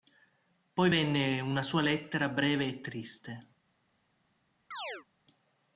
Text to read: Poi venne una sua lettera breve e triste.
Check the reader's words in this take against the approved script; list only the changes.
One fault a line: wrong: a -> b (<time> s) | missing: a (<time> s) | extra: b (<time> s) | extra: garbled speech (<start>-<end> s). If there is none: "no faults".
no faults